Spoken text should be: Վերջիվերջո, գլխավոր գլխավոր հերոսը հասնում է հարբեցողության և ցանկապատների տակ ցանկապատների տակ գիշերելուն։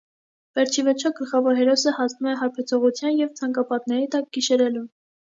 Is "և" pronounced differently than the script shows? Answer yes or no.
no